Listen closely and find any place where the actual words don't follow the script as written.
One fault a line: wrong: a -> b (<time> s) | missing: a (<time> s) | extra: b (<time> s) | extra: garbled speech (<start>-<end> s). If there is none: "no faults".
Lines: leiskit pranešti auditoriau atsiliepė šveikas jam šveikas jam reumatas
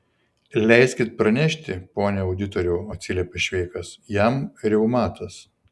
extra: pone (2.0 s)
missing: šveikas jam (4.4 s)